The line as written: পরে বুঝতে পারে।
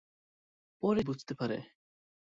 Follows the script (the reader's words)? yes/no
yes